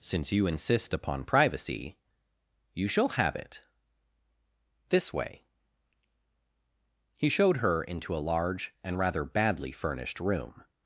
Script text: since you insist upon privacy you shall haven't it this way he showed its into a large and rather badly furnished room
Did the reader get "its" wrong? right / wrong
wrong